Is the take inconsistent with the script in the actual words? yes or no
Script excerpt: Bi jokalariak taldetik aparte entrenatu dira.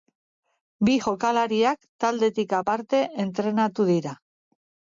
no